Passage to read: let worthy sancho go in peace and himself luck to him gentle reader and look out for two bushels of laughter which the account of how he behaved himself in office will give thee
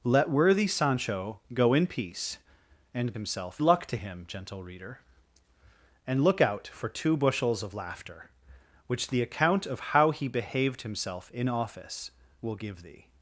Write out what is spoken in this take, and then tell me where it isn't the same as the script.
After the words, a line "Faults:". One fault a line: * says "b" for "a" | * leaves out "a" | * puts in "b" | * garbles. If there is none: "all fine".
let worthy sancho go in peace and himself luck to him gentle reader and look out for two bushels of laughter which the account of how he behaved himself in office will give thee
Faults:
all fine